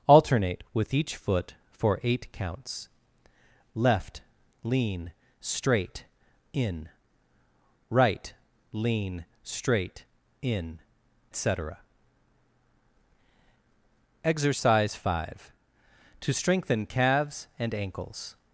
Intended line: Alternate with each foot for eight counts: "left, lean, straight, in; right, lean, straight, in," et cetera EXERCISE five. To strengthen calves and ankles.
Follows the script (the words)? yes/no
no